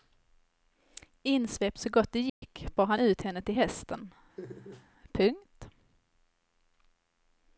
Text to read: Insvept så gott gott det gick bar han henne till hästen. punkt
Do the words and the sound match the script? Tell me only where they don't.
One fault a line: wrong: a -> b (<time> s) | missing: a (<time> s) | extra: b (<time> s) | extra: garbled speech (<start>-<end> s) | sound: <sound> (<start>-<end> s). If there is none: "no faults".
missing: gott (2.1 s)
sound: dropout (2.3-2.4 s)
extra: ut (3.0 s)
sound: laugh (4.4-4.9 s)